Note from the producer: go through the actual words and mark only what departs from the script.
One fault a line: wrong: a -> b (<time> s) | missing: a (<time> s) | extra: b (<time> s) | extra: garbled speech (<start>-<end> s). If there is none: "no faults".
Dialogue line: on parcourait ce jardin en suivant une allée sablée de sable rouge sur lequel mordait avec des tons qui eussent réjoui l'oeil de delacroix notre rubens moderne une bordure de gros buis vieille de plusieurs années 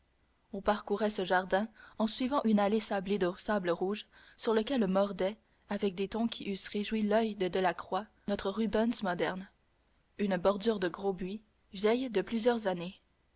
no faults